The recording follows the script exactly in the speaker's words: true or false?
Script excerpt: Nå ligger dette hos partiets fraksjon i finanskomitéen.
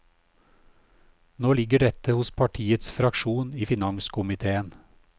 true